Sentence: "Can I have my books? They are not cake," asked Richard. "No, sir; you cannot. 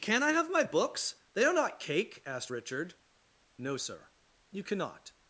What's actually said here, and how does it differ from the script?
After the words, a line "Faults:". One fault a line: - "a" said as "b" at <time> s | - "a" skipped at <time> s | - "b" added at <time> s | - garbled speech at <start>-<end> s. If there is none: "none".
"Can I have my books? They are not cake," asked Richard. "No, sir; you cannot.
Faults:
none